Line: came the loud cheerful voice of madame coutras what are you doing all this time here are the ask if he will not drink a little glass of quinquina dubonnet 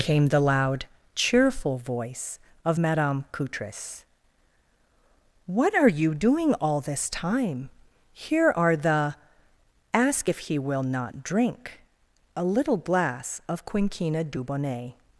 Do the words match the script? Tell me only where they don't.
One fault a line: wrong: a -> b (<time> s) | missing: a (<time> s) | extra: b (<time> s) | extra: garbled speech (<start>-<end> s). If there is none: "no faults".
no faults